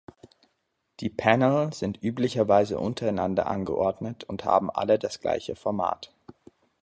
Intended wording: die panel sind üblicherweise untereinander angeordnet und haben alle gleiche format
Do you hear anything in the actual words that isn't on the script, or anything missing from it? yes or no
yes